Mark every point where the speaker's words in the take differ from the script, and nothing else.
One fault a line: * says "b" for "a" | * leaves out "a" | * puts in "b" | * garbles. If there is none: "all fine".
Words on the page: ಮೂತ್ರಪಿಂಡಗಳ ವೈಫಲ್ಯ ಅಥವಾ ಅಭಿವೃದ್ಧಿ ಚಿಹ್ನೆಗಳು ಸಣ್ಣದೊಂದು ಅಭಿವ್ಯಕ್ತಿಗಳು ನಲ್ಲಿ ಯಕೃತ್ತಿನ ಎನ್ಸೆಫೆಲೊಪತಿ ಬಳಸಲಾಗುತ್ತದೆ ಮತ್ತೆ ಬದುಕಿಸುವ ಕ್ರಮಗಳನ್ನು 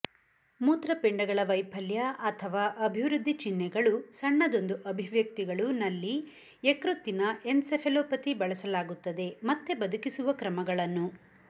all fine